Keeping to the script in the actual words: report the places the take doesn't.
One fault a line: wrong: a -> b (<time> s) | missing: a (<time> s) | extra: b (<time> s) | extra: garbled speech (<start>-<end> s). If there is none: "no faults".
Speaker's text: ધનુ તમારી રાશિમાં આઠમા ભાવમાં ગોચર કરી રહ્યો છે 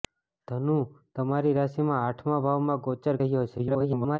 missing: કરી (3.2 s)
extra: garbled speech (3.6-4.2 s)